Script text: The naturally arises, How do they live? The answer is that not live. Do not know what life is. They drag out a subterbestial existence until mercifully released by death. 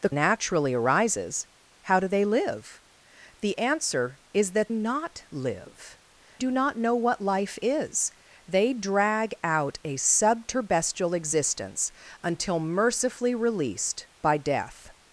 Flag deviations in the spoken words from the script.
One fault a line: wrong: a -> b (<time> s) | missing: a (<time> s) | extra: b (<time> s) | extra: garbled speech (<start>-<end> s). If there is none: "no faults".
no faults